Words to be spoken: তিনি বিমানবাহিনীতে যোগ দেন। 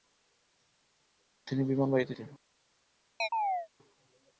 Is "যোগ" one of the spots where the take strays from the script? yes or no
yes